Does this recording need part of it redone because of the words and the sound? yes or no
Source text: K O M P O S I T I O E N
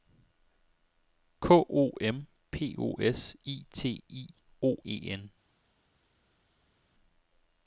no